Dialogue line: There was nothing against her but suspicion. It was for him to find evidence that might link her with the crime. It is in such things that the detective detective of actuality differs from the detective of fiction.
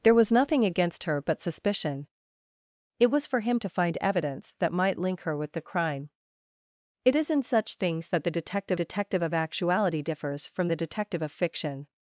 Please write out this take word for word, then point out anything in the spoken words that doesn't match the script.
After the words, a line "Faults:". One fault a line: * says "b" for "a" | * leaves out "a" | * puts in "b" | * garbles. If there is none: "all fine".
There was nothing against her but suspicion. It was for him to find evidence that might link her with the crime. It is in such things that the detective detective of actuality differs from the detective of fiction.
Faults:
all fine